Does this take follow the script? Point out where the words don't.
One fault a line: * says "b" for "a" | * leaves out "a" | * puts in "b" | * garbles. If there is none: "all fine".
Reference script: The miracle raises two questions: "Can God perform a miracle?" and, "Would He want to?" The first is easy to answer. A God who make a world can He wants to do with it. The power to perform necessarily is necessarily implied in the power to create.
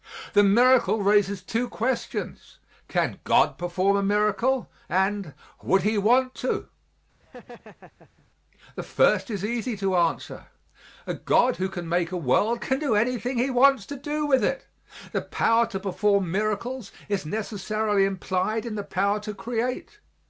* puts in "can"
* puts in "do anything"
* says "miracles" for "necessarily"